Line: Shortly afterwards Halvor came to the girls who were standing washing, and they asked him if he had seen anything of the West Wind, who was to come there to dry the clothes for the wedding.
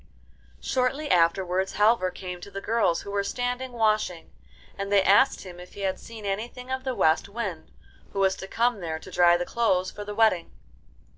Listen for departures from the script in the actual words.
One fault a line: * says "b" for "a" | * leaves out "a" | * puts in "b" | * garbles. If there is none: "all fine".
all fine